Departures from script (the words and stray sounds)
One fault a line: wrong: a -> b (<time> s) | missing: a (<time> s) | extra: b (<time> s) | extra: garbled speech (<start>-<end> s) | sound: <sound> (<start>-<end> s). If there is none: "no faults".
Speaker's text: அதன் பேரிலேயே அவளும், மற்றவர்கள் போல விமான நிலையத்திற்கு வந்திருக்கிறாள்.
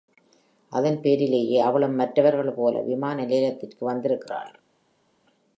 no faults